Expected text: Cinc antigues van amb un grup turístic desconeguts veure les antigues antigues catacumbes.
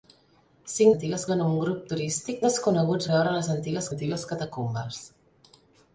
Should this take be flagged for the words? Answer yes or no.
no